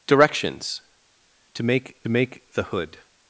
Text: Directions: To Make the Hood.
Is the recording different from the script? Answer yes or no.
yes